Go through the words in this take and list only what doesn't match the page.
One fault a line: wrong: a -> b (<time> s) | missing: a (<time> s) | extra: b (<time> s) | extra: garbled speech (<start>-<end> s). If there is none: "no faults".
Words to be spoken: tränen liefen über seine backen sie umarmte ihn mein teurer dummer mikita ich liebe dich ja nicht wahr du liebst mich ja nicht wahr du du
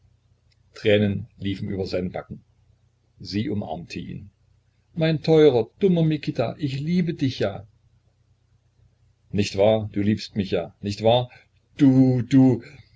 no faults